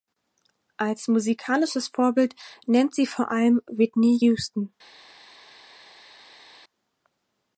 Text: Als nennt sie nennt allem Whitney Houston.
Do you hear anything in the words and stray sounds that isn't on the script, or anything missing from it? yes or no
yes